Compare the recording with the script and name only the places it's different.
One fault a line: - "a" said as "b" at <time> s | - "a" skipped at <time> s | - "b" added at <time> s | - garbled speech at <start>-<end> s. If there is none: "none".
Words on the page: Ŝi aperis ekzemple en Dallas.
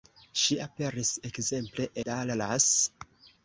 - "en" skipped at 1.9 s